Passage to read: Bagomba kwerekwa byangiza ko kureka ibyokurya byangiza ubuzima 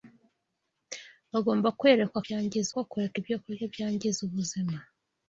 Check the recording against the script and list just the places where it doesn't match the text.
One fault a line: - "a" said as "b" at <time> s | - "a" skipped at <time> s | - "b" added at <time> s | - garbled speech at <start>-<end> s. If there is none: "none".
none